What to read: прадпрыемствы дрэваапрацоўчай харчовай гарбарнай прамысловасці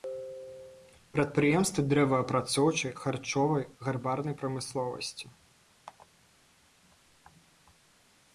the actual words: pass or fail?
pass